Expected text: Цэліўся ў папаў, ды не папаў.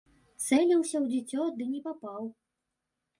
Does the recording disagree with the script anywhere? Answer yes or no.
yes